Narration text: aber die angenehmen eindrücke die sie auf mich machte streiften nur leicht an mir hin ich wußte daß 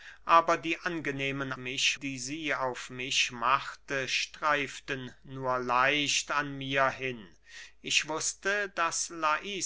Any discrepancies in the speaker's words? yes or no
yes